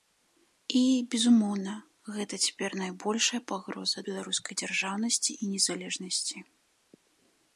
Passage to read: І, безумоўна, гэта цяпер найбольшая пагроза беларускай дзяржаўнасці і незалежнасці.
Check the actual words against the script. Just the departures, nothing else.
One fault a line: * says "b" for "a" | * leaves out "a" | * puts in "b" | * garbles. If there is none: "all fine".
all fine